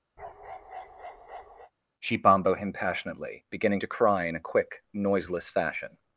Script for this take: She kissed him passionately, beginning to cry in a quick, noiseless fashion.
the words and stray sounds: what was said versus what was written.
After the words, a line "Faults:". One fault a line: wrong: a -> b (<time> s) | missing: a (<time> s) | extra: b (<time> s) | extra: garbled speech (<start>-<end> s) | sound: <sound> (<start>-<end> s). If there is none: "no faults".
She bombo him passionately, beginning to cry in a quick, noiseless fashion.
Faults:
sound: bark (0.2-1.7 s)
wrong: kissed -> bombo (2.2 s)